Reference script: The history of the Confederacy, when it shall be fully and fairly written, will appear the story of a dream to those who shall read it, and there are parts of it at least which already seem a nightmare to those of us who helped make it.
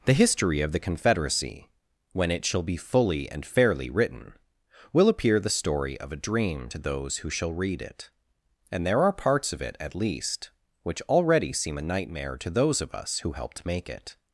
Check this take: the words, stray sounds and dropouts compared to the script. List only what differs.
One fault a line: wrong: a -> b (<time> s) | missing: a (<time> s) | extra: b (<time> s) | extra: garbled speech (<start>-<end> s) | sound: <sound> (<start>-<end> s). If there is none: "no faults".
no faults